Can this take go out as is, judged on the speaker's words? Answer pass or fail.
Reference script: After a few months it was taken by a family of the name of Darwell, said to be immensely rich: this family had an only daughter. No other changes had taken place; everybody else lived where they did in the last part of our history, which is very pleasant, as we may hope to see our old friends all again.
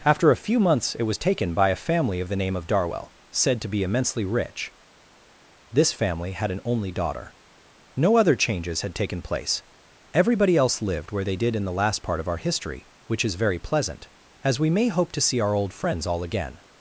pass